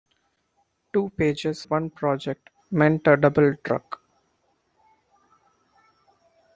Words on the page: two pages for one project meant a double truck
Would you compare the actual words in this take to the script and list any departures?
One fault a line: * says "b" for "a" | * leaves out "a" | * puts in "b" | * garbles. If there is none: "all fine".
* leaves out "for"